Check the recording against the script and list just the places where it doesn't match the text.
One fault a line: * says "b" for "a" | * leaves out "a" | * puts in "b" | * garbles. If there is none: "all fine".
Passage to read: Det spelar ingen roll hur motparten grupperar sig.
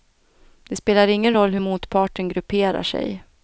all fine